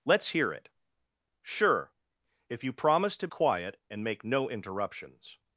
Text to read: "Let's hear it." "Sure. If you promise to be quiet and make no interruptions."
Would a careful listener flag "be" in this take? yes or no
yes